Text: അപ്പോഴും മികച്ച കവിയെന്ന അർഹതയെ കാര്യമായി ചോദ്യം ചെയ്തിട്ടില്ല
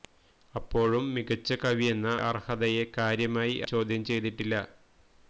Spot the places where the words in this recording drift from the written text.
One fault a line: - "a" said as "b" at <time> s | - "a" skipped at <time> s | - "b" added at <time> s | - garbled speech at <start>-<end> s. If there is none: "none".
none